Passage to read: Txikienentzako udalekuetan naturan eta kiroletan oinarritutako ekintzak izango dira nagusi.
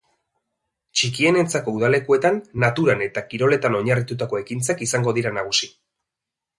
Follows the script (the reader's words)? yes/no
yes